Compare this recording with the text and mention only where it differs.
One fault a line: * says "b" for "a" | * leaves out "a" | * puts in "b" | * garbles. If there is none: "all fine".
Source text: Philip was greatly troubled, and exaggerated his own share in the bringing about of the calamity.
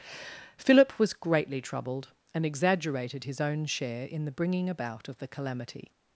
all fine